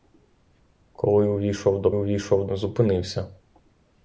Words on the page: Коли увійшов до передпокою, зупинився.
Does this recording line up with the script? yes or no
no